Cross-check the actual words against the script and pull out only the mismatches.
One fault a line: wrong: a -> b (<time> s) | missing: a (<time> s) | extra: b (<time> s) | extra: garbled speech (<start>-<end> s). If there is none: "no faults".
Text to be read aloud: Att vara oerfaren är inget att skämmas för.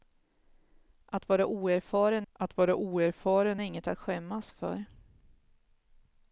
extra: att vara oerfaren (2.3 s)